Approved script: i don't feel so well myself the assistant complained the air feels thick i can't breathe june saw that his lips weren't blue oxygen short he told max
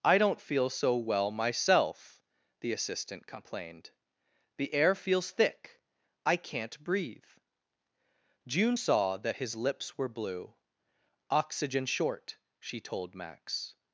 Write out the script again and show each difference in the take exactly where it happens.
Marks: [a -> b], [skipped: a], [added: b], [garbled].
i don't feel so well myself the assistant complained the air feels thick i can't breathe june saw that his lips [weren't -> were] blue oxygen short [he -> she] told max